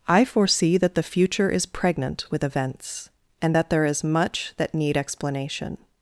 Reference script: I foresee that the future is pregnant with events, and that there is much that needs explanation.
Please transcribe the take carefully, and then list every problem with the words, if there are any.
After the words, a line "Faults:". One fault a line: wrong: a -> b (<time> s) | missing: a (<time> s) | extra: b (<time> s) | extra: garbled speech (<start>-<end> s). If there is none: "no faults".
I foresee that the future is pregnant with events, and that there is much that need explanation.
Faults:
wrong: needs -> need (4.7 s)